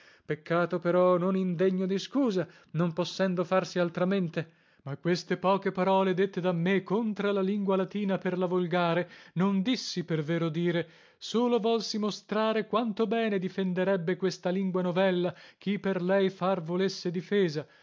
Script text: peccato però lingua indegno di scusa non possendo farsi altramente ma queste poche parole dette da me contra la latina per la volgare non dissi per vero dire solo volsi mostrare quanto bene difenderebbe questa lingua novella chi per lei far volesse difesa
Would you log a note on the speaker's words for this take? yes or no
yes